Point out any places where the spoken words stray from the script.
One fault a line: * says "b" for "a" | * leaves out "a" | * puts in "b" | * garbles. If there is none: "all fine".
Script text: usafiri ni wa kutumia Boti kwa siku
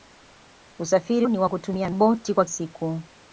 all fine